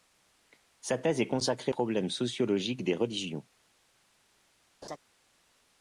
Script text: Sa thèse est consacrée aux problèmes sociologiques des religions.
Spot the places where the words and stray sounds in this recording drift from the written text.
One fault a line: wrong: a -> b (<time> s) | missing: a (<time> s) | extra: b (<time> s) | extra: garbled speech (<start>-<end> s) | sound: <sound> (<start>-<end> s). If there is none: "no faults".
missing: aux (1.7 s)
sound: laugh (4.8-5.0 s)